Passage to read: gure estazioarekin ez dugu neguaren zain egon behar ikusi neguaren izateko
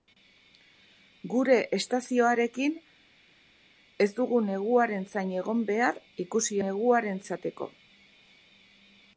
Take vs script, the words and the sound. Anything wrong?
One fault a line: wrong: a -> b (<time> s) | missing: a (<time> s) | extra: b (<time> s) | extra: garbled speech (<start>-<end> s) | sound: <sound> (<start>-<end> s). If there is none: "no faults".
no faults